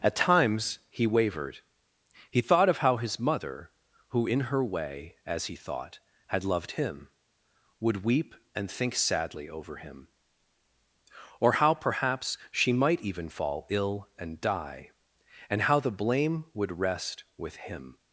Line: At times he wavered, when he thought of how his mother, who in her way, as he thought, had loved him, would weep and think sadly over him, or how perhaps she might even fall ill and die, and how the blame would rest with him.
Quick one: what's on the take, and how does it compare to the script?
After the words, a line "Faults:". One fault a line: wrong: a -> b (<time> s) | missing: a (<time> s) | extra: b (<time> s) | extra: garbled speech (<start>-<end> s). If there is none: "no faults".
At times he wavered, he thought of how his mother, who in her way, as he thought, had loved him, would weep and think sadly over him, or how perhaps she might even fall ill and die, and how the blame would rest with him.
Faults:
missing: when (1.6 s)